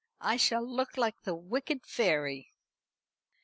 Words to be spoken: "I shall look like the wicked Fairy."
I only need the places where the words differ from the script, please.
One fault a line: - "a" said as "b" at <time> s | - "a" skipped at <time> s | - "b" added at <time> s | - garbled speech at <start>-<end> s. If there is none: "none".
none